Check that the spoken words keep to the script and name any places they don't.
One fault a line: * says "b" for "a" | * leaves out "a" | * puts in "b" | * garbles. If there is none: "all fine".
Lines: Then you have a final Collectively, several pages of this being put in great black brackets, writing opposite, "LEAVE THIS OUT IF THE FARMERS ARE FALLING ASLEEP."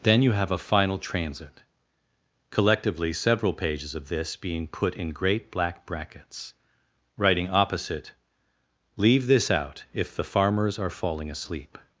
* puts in "transit"